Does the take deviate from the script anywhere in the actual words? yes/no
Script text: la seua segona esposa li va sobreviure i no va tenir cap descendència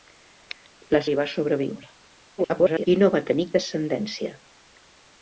yes